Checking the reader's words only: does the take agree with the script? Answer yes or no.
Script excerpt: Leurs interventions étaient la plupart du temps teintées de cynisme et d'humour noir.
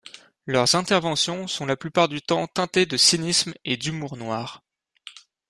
no